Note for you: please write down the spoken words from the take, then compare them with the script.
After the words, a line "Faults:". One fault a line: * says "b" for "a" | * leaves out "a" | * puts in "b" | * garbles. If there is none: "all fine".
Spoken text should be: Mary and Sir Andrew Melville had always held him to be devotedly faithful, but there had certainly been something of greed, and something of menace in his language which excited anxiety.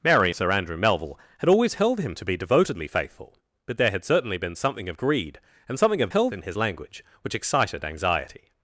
Mary Sir Andrew Melville had always held him to be devotedly faithful, but there had certainly been something of greed, and something of held in his language which excited anxiety.
Faults:
* leaves out "and"
* says "held" for "menace"